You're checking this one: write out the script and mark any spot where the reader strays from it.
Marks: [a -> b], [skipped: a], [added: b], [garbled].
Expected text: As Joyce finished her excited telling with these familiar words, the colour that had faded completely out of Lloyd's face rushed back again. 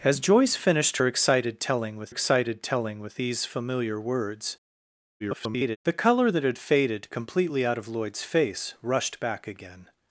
As Joyce finished her excited telling with [added: excited telling with] these familiar words, [garbled] the colour that had faded completely out of Lloyd's face rushed back again.